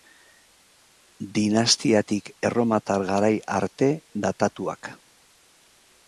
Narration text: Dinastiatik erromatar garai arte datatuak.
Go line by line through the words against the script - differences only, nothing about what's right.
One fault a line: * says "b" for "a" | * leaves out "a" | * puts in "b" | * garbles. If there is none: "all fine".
all fine